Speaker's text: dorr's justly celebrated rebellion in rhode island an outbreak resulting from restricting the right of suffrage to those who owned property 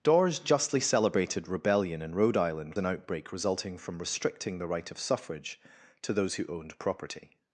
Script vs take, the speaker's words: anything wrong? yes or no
no